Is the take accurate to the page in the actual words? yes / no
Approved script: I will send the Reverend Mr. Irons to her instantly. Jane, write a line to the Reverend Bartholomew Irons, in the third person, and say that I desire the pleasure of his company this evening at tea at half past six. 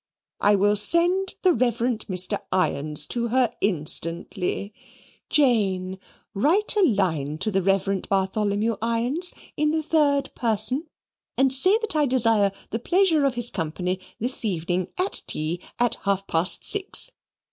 yes